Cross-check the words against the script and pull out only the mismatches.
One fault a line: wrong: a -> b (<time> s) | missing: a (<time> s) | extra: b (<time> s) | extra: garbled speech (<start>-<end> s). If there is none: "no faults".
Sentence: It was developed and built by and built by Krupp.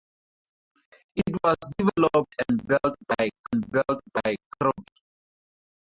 no faults